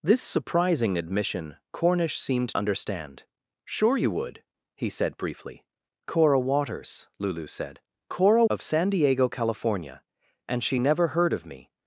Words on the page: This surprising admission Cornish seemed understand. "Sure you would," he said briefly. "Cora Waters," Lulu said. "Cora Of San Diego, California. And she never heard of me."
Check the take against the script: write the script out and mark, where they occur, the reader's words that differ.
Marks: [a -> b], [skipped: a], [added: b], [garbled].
This surprising admission Cornish seemed understand. "Sure you would," he said briefly. "Cora Waters," Lulu said. "Cora Of San Diego, California. And she never heard of me."